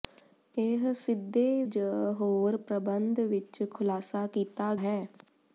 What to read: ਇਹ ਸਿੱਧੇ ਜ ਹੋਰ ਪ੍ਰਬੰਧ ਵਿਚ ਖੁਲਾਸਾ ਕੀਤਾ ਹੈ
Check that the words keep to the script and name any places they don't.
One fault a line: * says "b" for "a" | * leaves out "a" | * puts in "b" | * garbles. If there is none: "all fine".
all fine